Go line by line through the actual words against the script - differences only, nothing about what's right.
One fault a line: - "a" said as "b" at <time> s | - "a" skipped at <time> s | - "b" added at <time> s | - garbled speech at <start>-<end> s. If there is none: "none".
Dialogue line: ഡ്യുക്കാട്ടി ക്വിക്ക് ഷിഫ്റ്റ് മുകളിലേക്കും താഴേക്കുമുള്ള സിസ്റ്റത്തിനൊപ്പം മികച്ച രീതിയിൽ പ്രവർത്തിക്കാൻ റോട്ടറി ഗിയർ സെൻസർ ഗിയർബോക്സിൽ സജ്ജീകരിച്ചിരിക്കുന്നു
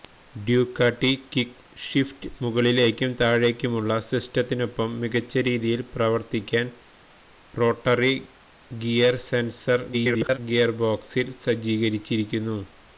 - garbled speech at 9.9-10.4 s